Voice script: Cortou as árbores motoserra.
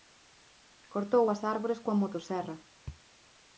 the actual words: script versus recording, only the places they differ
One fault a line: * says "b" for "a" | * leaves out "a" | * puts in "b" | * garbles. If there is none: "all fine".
* puts in "coa"